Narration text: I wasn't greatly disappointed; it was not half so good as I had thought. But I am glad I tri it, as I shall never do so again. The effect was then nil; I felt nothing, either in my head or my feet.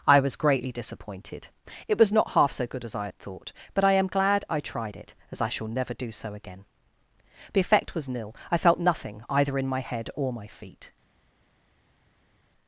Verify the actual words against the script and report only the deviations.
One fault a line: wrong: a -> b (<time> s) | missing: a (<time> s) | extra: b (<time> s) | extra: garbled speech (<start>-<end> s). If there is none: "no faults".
wrong: wasn't -> was (0.2 s)
wrong: tri -> tried (4.6 s)
missing: then (8.1 s)